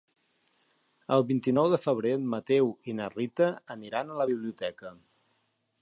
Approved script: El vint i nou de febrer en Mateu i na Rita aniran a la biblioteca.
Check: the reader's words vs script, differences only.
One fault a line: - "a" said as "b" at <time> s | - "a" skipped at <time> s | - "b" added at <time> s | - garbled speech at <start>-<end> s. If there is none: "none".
none